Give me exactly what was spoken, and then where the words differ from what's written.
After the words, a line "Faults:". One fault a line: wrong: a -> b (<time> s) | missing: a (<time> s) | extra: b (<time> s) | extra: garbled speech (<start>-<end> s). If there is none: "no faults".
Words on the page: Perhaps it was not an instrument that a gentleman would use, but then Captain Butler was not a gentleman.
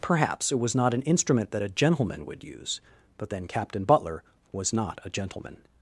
Perhaps it was not an instrument that a gentleman would use, but then Captain Butler was not a gentleman.
Faults:
no faults